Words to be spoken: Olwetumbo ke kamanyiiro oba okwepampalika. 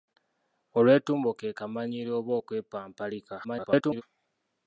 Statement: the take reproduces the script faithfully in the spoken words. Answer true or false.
false